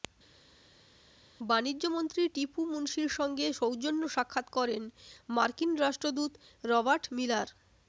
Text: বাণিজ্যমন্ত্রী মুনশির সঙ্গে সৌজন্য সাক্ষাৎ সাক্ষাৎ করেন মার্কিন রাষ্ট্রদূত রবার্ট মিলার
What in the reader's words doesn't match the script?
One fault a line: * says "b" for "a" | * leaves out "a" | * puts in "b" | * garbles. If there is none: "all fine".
* puts in "টিপু"
* leaves out "সাক্ষাৎ"